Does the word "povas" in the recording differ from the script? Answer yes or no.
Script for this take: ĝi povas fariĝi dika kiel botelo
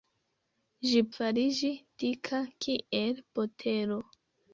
yes